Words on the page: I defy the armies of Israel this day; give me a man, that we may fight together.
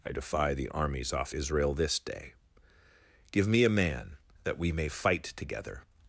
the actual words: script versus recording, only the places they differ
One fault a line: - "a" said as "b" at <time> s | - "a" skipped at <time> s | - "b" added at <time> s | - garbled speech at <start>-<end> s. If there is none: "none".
- "of" said as "off" at 1.1 s